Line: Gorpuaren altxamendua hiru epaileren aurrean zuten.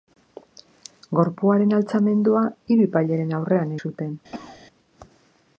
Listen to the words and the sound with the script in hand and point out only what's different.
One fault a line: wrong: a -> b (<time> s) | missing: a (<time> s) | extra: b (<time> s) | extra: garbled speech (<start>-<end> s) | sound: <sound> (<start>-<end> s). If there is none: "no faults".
sound: cough (4.3-4.6 s)